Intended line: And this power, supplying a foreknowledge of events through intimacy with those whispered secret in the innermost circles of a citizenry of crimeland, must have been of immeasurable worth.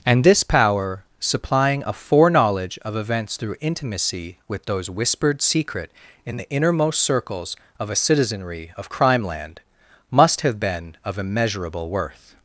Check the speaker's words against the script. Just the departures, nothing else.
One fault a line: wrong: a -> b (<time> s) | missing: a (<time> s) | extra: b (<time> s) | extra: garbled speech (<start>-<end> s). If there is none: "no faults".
no faults